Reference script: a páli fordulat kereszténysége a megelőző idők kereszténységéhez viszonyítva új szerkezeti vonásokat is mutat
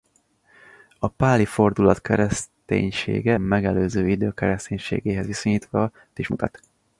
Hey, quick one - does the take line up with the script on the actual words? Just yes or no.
no